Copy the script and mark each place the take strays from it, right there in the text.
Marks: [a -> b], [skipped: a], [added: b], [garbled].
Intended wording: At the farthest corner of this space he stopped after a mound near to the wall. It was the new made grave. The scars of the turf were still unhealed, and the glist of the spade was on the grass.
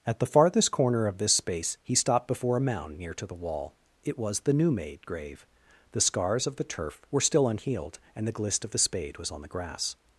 At the farthest corner of this space he stopped [after -> before] a mound near to the wall. It was the new made grave. The scars of the turf were still unhealed, and the glist of the spade was on the grass.